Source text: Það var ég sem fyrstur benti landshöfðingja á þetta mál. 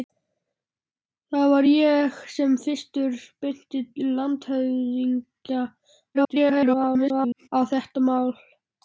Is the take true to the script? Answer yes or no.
no